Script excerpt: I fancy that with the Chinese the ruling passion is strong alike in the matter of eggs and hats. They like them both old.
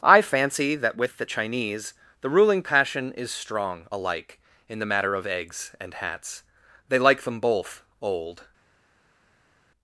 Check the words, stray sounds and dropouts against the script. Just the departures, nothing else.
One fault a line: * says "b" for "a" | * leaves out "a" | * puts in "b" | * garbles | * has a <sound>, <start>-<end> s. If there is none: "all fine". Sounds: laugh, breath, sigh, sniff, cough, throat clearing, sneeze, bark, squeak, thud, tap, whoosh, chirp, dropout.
all fine